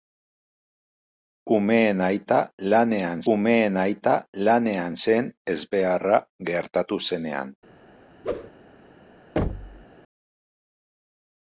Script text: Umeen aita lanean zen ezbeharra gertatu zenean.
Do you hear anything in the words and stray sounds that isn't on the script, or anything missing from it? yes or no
yes